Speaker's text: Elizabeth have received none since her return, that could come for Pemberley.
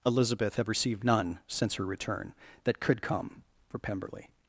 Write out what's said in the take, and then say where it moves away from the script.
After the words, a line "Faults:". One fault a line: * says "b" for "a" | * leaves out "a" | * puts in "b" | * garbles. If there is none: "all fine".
Elizabeth have received none since her return, that could come for Pemberley.
Faults:
all fine